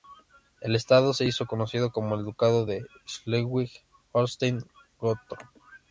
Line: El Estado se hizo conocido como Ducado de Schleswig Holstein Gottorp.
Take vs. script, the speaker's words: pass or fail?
fail